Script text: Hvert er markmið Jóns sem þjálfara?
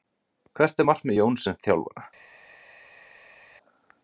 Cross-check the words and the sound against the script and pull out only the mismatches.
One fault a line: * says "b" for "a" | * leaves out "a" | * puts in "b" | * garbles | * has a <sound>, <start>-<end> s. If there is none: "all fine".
all fine